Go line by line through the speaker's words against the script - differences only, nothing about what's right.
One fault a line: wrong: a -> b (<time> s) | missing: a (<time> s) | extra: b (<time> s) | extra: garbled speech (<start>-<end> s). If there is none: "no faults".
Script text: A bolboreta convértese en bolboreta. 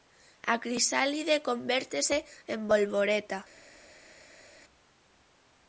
wrong: bolboreta -> crisálide (0.6 s)